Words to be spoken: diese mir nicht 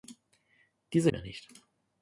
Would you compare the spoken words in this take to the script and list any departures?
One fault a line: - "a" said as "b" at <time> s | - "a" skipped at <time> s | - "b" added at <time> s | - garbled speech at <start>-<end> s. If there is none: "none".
none